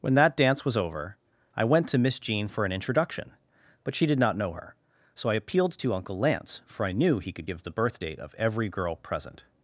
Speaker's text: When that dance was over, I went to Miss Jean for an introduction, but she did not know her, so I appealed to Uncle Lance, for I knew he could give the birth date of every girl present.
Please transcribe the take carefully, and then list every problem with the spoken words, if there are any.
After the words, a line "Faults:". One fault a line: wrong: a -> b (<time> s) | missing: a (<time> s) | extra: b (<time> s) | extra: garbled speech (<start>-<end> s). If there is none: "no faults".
When that dance was over, I went to Miss Jean for an introduction, but she did not know her, so I appealed to Uncle Lance, for I knew he could give the birth date of every girl present.
Faults:
no faults